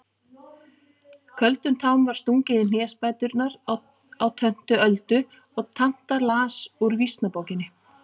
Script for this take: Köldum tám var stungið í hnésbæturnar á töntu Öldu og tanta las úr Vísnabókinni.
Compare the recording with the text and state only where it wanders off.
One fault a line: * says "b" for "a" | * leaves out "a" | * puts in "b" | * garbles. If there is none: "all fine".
all fine